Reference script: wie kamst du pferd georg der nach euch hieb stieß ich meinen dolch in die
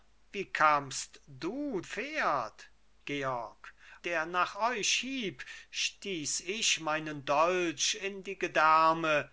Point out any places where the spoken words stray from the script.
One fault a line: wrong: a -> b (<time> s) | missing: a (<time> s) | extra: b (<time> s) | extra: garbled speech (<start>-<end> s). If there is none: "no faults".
no faults